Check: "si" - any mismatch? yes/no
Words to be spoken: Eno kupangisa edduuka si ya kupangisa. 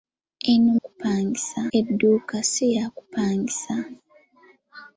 no